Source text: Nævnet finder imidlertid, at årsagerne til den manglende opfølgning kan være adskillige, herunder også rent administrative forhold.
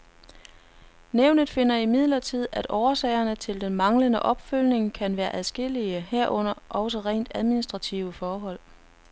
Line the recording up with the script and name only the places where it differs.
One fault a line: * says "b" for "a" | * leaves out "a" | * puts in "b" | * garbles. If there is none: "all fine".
all fine